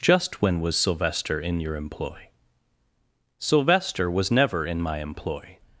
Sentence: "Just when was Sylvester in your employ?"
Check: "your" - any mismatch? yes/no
no